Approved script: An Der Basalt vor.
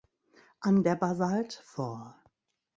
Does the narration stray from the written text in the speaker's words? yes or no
no